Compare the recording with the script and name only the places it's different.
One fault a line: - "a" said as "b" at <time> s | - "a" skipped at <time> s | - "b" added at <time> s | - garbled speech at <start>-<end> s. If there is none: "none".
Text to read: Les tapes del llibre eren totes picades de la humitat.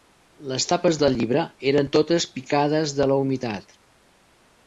none